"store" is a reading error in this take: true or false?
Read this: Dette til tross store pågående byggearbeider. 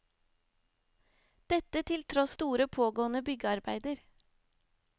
false